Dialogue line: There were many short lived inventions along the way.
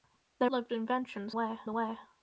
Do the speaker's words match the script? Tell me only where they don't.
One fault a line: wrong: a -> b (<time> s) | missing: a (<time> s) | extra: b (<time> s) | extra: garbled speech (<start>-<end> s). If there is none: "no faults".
missing: were many short (0.5 s)
wrong: along -> way (1.3 s)